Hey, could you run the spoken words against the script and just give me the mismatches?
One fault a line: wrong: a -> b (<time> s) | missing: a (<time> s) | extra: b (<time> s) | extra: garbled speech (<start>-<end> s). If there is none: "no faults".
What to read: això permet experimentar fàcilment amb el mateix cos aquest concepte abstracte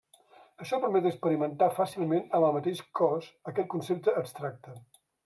no faults